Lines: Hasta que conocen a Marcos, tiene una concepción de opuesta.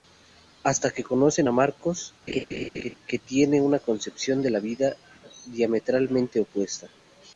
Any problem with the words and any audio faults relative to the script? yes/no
yes